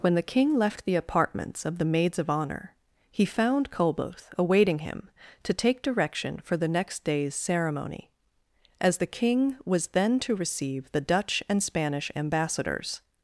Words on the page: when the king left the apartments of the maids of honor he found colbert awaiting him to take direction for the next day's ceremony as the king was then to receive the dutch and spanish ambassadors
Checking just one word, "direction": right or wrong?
right